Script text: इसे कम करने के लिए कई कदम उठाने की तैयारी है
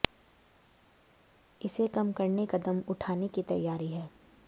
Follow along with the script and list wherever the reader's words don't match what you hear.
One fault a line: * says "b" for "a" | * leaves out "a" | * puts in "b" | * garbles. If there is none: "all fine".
* leaves out "के लिए कई"